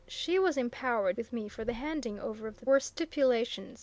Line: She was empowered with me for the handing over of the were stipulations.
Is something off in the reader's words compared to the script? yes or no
no